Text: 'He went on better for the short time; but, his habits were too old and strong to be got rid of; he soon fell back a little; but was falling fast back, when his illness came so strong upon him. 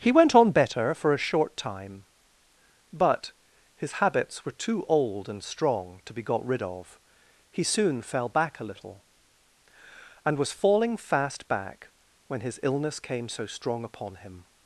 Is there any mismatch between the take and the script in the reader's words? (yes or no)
yes